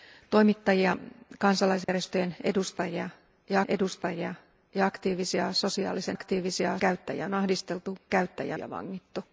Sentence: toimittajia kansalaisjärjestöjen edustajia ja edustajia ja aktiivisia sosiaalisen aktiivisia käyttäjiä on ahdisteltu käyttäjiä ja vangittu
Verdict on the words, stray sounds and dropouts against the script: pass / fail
fail